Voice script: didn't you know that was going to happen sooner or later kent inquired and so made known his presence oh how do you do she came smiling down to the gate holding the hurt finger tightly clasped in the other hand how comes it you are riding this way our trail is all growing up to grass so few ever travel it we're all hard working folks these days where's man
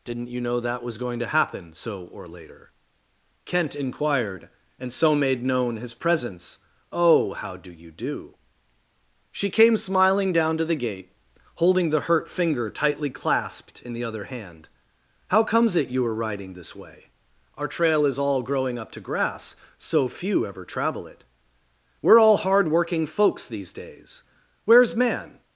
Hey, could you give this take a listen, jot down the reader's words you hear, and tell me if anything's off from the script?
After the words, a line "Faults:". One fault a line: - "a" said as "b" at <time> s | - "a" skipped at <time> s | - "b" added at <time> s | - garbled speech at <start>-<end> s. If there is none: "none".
didn't you know that was going to happen so or later kent inquired and so made known his presence oh how do you do she came smiling down to the gate holding the hurt finger tightly clasped in the other hand how comes it you are riding this way our trail is all growing up to grass so few ever travel it we're all hard working folks these days where's man
Faults:
- "sooner" said as "so" at 1.7 s